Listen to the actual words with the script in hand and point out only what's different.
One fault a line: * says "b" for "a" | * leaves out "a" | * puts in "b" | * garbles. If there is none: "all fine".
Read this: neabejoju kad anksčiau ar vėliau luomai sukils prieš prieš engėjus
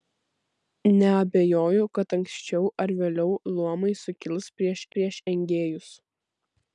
all fine